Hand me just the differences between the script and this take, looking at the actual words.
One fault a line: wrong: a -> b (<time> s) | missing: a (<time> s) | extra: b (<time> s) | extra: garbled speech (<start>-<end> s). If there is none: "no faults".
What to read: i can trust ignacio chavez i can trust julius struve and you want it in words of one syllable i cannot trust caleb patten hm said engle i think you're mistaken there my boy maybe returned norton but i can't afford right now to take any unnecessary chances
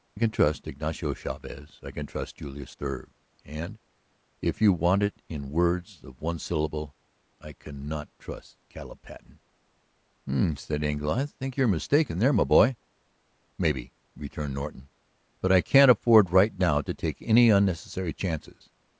extra: if (4.4 s)